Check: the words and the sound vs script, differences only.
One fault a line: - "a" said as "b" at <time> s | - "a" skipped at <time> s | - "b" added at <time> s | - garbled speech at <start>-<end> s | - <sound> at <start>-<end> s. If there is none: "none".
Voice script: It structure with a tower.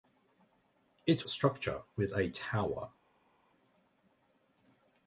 none